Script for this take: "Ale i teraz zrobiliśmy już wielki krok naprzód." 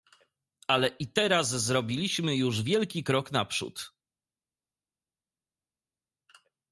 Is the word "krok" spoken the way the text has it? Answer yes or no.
yes